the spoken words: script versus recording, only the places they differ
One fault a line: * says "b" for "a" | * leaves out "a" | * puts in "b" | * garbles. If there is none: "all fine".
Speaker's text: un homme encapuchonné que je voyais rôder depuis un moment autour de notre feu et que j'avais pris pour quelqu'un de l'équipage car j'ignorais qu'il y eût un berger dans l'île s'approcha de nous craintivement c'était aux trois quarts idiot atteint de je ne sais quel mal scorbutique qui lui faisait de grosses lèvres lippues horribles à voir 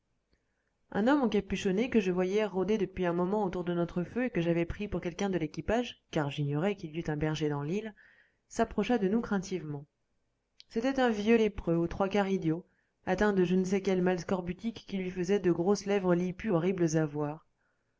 * puts in "un vieux lépreux"